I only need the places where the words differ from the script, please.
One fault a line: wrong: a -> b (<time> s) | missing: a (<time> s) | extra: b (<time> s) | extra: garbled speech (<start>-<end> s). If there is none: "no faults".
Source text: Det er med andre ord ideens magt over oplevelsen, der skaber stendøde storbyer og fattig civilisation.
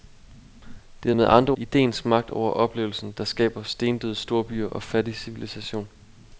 missing: ord (1.5 s)